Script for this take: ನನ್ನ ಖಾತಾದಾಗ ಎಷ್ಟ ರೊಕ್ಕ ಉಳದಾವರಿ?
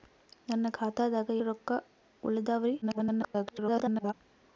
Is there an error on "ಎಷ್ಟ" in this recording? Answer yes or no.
yes